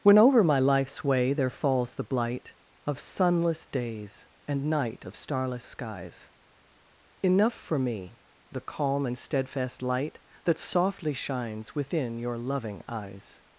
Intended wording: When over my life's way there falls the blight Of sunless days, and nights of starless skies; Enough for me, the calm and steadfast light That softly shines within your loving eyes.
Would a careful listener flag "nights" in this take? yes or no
yes